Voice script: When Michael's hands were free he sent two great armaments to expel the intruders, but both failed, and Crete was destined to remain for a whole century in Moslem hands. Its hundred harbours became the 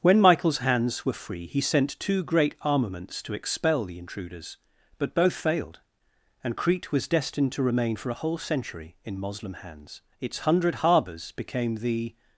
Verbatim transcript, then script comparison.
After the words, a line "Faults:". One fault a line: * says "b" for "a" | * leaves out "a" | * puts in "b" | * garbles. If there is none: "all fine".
When Michael's hands were free he sent two great armaments to expel the intruders, but both failed, and Crete was destined to remain for a whole century in Moslem hands. Its hundred harbours became the
Faults:
all fine